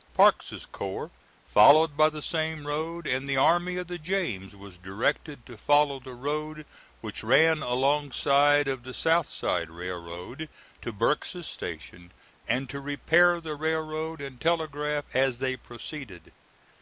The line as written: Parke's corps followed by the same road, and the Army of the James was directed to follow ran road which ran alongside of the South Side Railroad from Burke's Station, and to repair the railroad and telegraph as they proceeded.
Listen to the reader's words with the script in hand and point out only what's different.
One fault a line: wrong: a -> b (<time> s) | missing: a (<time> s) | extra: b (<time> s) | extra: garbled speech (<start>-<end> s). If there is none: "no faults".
wrong: ran -> the (6.0 s)
wrong: from -> to (10.8 s)